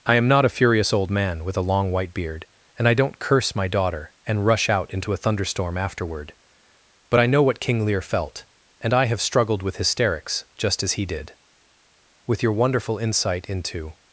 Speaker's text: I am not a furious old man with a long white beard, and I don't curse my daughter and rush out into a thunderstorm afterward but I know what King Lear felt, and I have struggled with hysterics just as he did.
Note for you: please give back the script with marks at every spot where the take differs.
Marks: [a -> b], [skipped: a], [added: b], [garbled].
I am not a furious old man with a long white beard, and I don't curse my daughter and rush out into a thunderstorm afterward but I know what King Lear felt, and I have struggled with hysterics just as he did. [added: With your wonderful insight into]